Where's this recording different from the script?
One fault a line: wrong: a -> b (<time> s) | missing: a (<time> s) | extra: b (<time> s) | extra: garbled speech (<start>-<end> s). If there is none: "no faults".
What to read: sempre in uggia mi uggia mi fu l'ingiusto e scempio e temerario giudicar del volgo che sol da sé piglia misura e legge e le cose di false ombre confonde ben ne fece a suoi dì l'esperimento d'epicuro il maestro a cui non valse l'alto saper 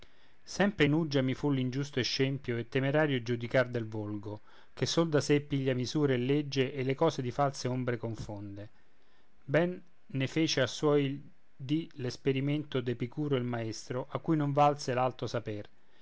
missing: uggia mi (1.3 s)